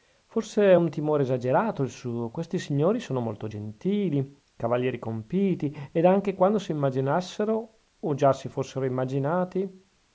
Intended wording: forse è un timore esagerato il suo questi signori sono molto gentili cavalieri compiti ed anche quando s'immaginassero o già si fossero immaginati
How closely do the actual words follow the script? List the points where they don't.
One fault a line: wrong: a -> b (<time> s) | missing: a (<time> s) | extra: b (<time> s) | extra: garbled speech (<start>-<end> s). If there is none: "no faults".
no faults